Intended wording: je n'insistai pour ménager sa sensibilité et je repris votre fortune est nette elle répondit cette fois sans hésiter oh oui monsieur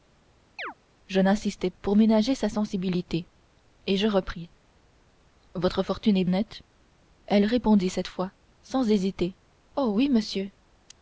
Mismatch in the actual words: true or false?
false